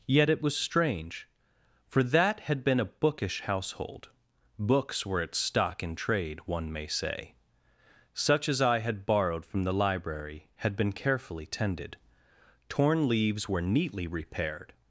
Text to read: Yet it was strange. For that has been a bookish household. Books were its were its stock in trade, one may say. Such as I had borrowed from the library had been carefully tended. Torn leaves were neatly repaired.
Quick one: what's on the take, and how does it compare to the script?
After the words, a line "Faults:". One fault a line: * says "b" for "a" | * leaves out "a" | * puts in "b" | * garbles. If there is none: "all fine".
Yet it was strange. For that had been a bookish household. Books were its stock in trade, one may say. Such as I had borrowed from the library had been carefully tended. Torn leaves were neatly repaired.
Faults:
* says "had" for "has"
* leaves out "were its"